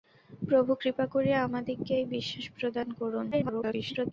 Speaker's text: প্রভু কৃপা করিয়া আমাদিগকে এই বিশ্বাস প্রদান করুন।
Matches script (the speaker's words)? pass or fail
fail